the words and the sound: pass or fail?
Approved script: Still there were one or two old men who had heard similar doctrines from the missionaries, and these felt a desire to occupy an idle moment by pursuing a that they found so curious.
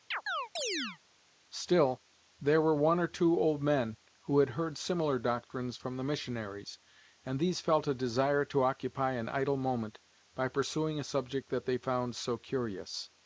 fail